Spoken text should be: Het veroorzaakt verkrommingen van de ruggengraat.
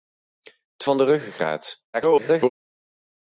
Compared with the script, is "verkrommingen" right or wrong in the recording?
wrong